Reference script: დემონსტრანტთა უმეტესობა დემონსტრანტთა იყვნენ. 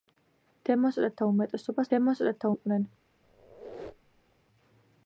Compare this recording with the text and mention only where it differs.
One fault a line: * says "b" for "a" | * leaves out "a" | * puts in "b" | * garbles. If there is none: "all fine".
all fine